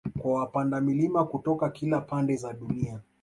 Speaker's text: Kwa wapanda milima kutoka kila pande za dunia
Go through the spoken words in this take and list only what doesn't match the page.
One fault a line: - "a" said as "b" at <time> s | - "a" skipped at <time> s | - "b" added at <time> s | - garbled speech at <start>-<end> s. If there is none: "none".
none